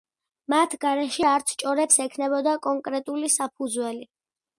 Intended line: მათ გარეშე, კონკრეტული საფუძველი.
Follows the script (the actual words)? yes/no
no